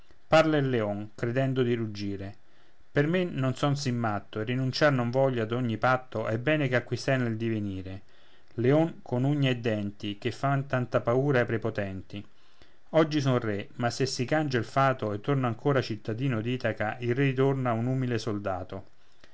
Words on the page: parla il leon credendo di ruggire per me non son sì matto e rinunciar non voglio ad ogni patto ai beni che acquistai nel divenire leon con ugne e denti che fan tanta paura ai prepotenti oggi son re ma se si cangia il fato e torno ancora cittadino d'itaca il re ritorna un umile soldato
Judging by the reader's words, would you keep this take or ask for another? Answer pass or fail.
pass